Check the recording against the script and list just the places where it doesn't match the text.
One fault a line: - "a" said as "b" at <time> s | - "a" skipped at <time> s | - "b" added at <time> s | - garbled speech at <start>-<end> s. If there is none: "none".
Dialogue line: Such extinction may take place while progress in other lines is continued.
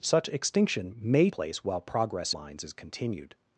- "take" skipped at 1.3 s
- "in other" skipped at 2.4 s